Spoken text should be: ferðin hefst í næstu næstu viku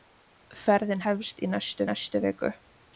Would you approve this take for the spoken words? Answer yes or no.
yes